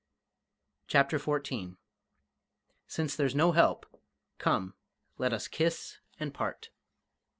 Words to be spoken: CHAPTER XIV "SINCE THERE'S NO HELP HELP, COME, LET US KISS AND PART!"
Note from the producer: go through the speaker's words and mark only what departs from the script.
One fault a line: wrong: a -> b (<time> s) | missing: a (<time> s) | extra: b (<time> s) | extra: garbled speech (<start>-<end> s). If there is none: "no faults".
missing: HELP (3.9 s)